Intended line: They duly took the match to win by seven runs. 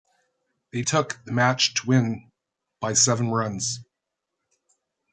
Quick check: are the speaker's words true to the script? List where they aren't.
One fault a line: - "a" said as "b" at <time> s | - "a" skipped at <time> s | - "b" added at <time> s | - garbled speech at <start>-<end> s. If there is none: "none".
- "duly" skipped at 0.8 s